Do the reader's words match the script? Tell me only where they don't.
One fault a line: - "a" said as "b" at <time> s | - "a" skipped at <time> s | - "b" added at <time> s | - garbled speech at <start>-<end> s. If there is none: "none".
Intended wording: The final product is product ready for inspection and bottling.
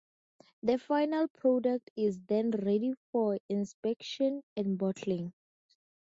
- "product" said as "then" at 2.2 s